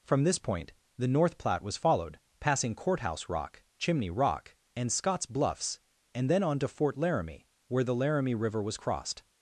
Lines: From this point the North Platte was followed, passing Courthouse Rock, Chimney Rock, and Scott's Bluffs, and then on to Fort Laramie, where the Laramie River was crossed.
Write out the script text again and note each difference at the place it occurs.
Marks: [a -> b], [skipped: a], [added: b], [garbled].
From this point the North Platte was followed, passing Courthouse Rock, Chimney Rock, and Scott's Bluffs, and then on to Fort Laramie, where the Laramie River was crossed.